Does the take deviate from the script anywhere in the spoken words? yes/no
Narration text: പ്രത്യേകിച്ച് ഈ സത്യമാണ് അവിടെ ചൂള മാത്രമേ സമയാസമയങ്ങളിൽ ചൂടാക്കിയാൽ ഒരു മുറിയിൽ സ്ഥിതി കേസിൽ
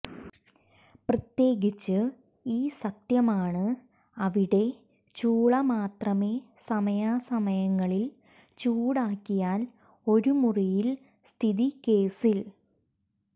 no